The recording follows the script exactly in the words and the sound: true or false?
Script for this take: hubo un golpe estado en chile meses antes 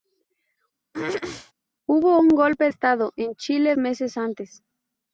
false